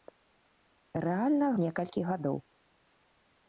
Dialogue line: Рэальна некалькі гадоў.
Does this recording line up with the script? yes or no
yes